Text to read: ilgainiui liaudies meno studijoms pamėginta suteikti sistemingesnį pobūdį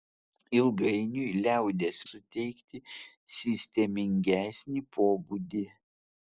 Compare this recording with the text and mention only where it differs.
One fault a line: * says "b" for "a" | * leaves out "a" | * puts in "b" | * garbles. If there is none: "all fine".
* leaves out "meno studijoms pamėginta"